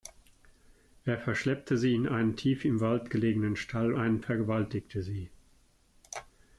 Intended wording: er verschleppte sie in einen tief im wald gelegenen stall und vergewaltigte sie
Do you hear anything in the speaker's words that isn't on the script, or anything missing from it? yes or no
yes